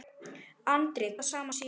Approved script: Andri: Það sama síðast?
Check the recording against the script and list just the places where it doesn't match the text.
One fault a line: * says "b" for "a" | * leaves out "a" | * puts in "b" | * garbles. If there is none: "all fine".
all fine